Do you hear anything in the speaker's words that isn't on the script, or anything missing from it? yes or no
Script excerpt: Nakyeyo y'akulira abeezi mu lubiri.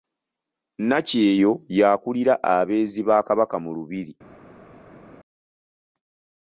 yes